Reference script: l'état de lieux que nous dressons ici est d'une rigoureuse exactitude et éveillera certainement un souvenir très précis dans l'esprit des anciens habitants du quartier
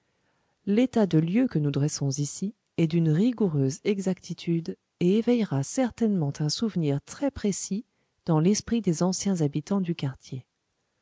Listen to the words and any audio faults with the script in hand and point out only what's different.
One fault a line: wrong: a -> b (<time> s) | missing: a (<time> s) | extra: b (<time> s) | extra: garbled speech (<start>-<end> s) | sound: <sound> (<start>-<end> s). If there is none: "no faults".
no faults